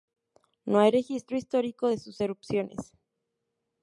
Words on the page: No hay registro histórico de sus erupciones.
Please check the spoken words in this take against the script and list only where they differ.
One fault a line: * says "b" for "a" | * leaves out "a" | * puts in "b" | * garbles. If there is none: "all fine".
all fine